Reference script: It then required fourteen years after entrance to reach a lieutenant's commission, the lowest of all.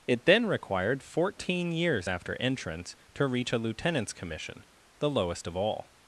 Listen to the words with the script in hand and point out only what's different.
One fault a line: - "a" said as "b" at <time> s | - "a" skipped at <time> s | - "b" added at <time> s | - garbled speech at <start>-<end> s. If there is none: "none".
none